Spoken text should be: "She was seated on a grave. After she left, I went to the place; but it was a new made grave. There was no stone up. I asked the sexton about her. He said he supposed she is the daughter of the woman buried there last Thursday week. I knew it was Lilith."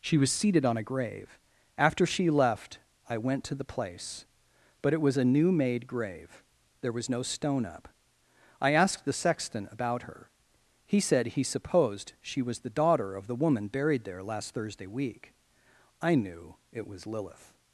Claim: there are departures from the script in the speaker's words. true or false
true